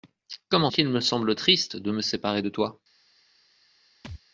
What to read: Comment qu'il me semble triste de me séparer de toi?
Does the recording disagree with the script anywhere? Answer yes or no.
no